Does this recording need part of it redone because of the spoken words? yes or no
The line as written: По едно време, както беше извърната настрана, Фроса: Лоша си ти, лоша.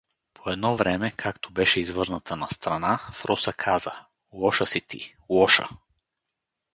yes